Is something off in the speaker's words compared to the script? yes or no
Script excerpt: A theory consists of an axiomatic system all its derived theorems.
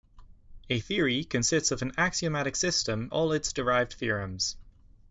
no